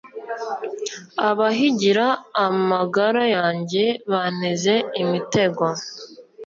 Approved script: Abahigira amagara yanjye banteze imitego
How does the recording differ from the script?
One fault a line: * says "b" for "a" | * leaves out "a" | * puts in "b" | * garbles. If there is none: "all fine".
all fine